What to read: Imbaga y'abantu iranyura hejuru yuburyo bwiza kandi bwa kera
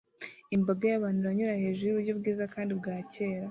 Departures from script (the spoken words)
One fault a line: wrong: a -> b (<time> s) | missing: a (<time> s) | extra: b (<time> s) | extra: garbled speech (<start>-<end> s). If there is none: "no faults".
no faults